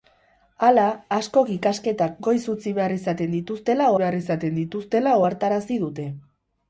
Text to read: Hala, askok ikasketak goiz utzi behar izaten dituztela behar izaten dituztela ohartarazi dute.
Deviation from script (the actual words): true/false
false